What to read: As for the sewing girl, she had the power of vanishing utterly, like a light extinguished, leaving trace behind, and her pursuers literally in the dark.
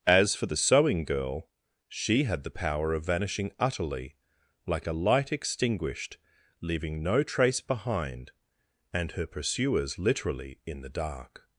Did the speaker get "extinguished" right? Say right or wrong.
right